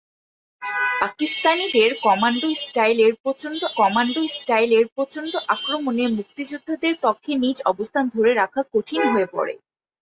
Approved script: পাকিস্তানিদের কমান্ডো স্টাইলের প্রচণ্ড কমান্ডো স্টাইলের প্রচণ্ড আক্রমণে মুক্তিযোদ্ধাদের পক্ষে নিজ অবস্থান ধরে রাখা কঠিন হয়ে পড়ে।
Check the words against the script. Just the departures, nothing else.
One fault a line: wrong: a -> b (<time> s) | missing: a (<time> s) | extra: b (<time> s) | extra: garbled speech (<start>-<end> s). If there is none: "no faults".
no faults